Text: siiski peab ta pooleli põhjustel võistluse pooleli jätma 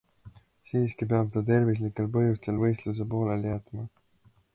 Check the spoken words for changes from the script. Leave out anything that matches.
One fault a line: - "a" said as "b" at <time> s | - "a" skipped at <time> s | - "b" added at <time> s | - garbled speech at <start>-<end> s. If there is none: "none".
- "pooleli" said as "tervislikel" at 1.5 s